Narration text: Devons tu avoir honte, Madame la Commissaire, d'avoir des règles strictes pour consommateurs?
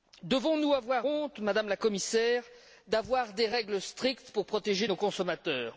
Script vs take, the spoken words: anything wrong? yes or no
yes